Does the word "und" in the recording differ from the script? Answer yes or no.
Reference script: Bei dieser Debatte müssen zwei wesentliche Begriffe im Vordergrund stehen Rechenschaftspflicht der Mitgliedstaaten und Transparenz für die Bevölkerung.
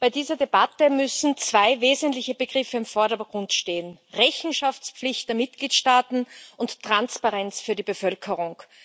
no